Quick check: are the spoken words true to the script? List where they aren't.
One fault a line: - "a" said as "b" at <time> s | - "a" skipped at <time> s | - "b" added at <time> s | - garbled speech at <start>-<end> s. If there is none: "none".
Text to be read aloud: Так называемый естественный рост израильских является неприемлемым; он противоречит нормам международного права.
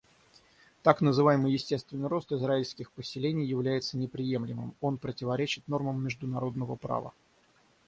- "поселений" added at 2.9 s